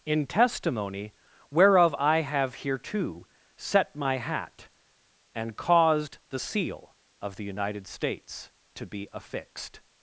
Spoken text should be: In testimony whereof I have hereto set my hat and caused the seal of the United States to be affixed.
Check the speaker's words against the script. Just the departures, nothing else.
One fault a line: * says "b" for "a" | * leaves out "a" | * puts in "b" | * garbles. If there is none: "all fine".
all fine